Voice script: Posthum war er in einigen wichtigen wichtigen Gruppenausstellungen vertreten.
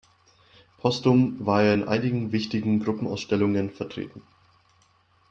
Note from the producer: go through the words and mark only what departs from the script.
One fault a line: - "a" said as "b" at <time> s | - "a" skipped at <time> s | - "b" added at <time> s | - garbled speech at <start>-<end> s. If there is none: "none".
- "wichtigen" skipped at 2.8 s